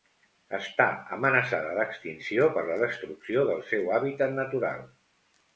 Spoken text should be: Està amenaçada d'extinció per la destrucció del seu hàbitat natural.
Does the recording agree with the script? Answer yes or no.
yes